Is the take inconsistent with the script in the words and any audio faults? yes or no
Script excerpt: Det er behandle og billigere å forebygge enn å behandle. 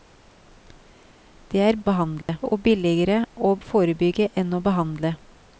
yes